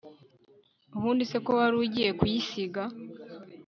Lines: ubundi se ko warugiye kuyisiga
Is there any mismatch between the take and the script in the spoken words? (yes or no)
no